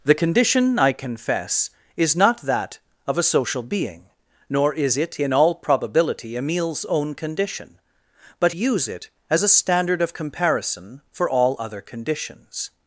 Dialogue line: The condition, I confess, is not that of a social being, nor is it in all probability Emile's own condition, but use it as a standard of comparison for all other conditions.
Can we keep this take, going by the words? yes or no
yes